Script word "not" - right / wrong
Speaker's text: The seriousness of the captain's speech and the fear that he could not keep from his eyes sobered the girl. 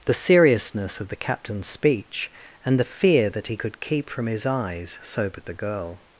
wrong